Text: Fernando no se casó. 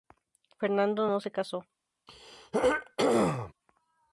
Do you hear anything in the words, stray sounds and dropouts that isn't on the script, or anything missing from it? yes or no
yes